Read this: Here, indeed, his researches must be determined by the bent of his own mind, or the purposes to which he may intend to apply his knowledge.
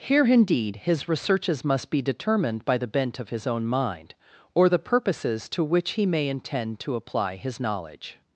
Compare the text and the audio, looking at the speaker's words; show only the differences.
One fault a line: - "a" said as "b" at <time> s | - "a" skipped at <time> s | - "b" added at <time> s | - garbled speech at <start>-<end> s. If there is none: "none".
none